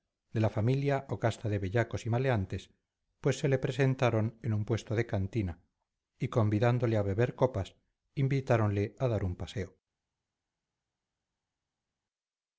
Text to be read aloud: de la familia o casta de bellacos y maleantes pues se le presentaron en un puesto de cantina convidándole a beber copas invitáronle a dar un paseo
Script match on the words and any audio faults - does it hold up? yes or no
no